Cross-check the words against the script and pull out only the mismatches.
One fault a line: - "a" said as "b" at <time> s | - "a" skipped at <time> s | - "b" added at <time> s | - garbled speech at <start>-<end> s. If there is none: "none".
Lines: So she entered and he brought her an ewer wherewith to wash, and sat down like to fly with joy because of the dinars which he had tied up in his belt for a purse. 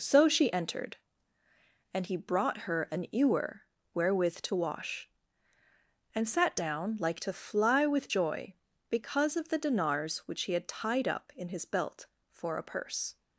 none